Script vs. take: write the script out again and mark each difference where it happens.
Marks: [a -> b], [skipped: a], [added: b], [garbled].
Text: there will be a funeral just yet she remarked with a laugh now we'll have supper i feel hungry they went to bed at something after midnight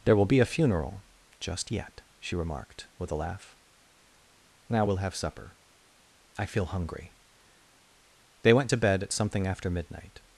there will be a funeral just yet she remarked with a laugh now we'll have supper i feel hungry they went to bed at something after midnight